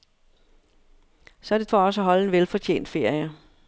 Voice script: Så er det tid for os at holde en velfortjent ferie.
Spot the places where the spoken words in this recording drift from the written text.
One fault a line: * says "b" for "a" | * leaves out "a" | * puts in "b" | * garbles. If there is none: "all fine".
* leaves out "tid"